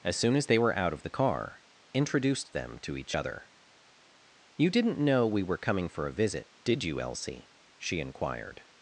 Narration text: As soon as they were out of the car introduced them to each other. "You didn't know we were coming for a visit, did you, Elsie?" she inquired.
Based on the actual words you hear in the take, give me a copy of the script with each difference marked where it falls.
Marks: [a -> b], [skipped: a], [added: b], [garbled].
As soon as they were out of the car introduced them to each other. "You didn't know we were coming for a visit, did you, Elsie?" she inquired.